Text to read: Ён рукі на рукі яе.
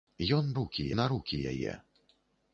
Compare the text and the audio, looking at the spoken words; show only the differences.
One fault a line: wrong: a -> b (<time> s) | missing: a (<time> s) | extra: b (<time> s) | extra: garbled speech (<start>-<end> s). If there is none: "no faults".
no faults